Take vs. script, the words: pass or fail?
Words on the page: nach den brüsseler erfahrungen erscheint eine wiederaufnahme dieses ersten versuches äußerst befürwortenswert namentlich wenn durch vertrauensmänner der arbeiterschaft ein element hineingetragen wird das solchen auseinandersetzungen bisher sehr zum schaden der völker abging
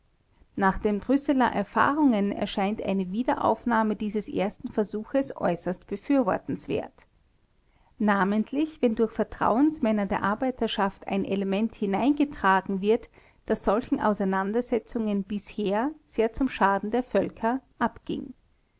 pass